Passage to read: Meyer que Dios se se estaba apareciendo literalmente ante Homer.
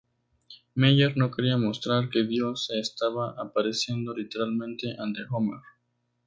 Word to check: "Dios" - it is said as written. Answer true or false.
true